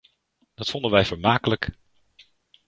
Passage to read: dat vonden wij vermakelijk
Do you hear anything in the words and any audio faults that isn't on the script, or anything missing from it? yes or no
no